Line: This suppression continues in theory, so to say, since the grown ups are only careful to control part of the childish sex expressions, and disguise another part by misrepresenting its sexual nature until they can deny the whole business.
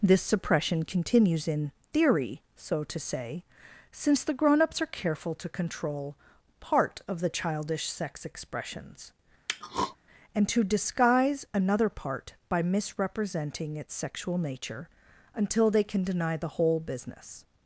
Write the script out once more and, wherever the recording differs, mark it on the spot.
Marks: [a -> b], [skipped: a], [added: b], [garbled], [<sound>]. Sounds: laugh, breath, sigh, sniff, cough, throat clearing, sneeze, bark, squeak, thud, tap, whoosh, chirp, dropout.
This suppression continues in theory, so to say, since the grown ups are [skipped: only] careful to control part of the childish sex expressions, [throat clearing] and [added: to] disguise another part by misrepresenting its sexual nature until they can deny the whole business.